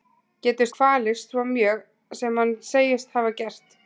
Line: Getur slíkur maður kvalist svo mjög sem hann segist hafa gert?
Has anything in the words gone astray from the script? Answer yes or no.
yes